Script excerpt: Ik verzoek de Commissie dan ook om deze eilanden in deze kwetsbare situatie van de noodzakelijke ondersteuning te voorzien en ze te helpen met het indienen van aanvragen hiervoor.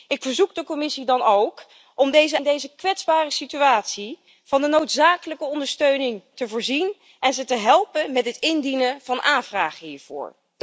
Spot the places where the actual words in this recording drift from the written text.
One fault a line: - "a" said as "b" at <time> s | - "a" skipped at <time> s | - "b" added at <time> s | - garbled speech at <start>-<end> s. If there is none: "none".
- "eilanden" skipped at 2.4 s